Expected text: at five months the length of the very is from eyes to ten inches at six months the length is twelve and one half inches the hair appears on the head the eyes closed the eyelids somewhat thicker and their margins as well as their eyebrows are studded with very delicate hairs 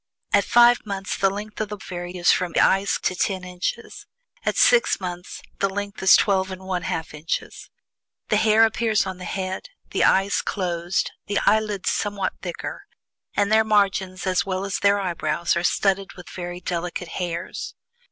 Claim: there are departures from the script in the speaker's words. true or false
false